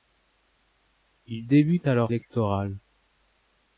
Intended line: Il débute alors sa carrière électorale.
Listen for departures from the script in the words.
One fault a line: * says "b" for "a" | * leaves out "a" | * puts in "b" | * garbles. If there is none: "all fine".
* leaves out "sa carrière"